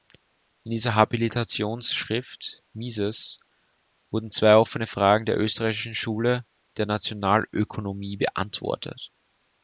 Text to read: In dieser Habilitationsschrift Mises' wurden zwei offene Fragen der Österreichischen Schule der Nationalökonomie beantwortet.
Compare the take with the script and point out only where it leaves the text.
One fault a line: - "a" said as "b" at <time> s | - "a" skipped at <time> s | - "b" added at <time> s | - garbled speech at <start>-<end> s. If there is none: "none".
none